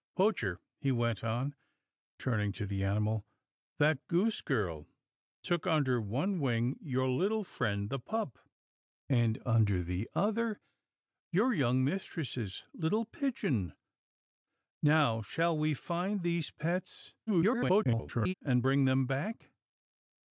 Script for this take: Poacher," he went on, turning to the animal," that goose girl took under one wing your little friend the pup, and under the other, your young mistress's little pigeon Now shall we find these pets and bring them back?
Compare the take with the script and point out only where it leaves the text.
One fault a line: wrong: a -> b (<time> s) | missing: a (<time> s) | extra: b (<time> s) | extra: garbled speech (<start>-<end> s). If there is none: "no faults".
extra: garbled speech (17.3-18.3 s)